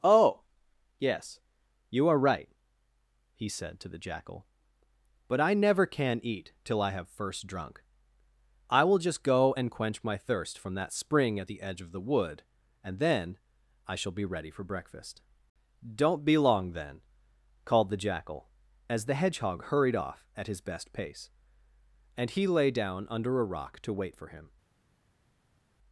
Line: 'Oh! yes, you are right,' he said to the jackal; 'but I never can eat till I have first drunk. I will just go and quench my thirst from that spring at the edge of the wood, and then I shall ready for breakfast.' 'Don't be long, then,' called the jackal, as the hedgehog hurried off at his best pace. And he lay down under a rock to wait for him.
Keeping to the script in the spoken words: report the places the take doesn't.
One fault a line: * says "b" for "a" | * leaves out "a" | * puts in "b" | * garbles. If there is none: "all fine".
* puts in "be"